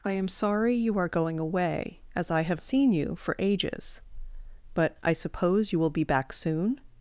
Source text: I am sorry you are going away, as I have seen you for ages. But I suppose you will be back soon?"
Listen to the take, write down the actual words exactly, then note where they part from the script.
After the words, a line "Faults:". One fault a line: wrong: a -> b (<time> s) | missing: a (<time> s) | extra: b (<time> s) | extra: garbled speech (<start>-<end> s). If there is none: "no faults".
I am sorry you are going away, as I have seen you for ages. But I suppose you will be back soon?"
Faults:
no faults